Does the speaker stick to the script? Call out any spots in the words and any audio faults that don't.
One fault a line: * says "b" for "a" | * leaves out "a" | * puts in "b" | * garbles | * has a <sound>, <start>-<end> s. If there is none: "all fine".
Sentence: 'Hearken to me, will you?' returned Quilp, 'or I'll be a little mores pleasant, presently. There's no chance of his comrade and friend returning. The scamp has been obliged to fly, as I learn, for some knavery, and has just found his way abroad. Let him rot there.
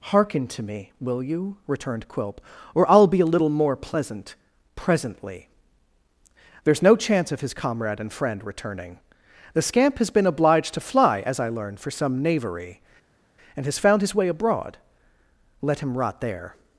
* says "more" for "mores"
* leaves out "just"